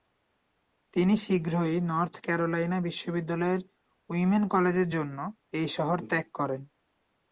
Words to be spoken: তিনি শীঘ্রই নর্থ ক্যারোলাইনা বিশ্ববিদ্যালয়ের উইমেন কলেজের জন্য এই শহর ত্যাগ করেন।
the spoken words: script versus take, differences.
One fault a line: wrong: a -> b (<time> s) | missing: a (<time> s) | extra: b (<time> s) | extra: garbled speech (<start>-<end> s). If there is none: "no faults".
no faults